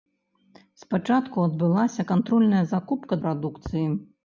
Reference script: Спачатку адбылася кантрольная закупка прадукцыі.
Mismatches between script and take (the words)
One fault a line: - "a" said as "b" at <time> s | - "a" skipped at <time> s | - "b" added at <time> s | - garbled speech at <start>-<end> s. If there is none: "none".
none